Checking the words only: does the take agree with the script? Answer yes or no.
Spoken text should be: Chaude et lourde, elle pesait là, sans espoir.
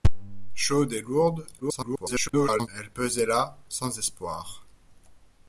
no